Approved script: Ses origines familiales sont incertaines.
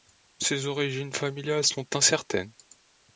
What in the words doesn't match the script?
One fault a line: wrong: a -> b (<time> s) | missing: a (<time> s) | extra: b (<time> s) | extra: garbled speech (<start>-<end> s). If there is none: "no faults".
no faults